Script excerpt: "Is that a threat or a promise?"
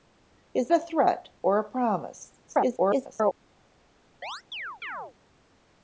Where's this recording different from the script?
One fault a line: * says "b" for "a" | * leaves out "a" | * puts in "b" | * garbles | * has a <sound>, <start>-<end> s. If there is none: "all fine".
* leaves out "that"
* garbles
* has a chirp, 4.2-5.1 s